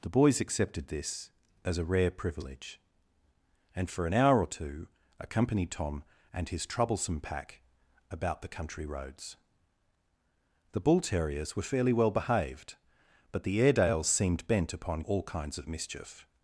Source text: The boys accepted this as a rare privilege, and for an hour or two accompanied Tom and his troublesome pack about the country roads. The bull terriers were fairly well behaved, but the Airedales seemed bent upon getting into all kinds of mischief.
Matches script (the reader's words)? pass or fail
fail